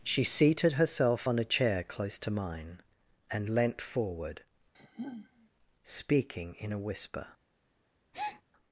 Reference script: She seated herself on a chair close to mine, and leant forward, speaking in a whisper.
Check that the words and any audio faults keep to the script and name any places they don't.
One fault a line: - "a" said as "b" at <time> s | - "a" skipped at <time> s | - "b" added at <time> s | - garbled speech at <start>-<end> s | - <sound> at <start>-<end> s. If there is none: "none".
- sigh at 4.7-5.5 s
- breath at 8.1-8.4 s